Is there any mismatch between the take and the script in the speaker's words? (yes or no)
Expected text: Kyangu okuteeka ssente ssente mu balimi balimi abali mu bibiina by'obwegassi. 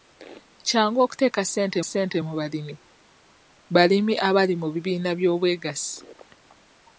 no